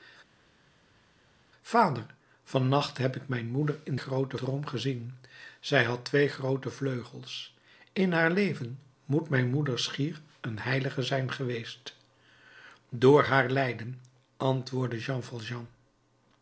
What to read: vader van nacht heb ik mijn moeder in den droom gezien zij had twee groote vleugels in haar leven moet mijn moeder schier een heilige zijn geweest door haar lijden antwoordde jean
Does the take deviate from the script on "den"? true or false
true